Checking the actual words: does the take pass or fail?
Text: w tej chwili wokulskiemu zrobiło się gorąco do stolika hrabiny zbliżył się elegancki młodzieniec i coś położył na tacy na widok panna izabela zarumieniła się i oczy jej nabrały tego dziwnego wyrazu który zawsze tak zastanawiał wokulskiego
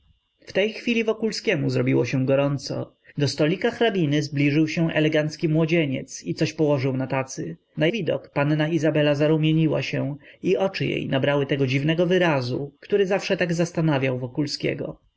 pass